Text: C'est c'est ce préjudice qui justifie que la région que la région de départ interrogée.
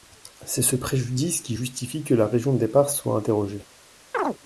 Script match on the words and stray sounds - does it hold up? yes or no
no